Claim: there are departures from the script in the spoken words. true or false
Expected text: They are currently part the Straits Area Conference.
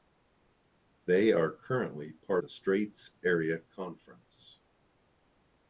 false